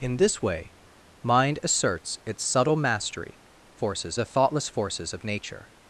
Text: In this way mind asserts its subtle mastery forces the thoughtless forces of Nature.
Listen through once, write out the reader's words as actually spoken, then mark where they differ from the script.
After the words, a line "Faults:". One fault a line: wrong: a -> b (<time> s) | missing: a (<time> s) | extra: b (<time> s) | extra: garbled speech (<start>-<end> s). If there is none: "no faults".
In this way mind asserts its subtle mastery forces the thoughtless forces of Nature.
Faults:
no faults